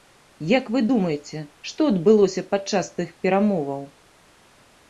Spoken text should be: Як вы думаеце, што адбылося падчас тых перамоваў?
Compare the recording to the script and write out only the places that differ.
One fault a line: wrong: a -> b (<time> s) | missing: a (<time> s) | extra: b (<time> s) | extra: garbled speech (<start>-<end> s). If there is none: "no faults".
no faults